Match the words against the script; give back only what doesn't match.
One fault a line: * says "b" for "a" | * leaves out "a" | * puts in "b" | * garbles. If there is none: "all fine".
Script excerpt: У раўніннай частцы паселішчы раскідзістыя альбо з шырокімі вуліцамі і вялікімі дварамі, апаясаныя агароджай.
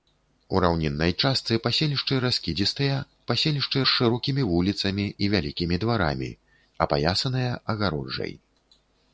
* says "паселішчы" for "альбо"